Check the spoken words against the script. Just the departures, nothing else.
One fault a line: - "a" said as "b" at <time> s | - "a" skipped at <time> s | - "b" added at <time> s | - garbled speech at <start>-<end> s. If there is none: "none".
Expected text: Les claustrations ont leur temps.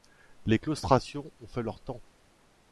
- "fait" added at 1.5 s